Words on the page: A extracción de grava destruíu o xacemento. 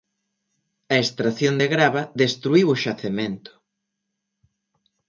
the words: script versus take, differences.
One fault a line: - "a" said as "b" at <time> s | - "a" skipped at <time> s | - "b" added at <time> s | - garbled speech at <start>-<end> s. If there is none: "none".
none